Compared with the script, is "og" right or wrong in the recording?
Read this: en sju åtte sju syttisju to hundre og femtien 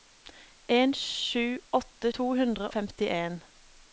wrong